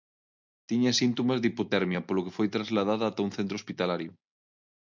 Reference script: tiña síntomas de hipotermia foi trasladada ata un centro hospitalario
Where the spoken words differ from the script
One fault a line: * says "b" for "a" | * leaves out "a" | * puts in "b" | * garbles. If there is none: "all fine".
* puts in "polo que"